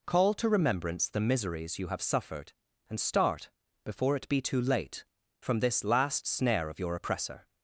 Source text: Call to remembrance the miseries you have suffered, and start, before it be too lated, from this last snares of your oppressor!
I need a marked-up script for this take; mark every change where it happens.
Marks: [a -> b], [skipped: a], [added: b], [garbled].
Call to remembrance the miseries you have suffered, and start, before it be too [lated, -> late] from this last [snares -> snare] of your oppressor!